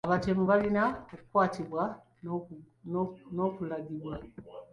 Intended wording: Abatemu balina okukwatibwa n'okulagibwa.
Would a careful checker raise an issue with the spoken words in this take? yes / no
no